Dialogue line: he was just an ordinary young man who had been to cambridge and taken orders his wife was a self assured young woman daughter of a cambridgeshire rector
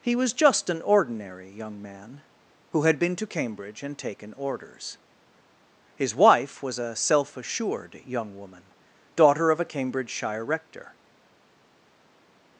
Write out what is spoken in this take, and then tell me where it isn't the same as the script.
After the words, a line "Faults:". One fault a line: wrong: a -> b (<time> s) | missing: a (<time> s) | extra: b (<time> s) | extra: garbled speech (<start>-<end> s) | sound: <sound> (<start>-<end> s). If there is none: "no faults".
he was just an ordinary young man who had been to cambridge and taken orders his wife was a self assured young woman daughter of a cambridgeshire rector
Faults:
no faults